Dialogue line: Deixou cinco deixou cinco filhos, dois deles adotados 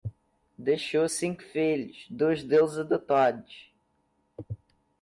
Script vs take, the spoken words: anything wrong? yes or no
yes